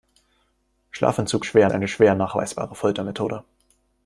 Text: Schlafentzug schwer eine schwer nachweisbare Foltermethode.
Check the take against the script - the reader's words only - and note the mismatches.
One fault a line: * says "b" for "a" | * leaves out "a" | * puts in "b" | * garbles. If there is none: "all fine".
all fine